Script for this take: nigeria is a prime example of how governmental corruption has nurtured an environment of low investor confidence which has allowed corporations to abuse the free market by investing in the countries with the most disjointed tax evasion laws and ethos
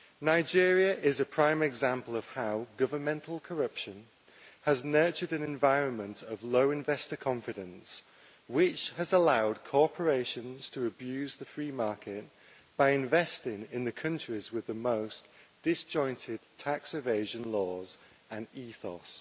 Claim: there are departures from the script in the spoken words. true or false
false